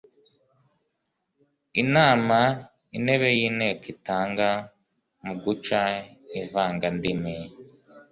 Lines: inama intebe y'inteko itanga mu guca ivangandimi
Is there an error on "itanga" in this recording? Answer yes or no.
no